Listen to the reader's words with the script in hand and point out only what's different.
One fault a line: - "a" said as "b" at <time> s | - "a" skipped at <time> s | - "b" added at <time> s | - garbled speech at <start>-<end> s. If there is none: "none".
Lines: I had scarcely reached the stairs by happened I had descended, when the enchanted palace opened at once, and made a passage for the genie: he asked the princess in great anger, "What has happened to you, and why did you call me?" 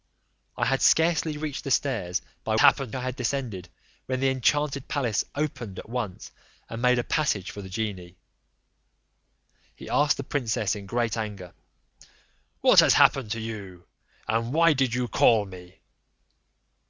none